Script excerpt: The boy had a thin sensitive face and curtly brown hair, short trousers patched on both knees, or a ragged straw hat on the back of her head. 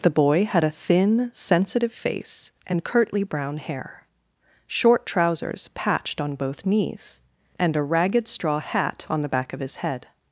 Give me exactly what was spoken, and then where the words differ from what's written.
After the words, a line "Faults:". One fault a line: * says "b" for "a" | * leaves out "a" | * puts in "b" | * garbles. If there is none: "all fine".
The boy had a thin sensitive face and curtly brown hair, short trousers patched on both knees, and a ragged straw hat on the back of his head.
Faults:
* says "and" for "or"
* says "his" for "her"